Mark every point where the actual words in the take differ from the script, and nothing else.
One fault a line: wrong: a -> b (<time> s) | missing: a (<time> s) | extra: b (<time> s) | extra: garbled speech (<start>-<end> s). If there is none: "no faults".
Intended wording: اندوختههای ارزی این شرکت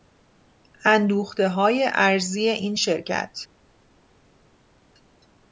no faults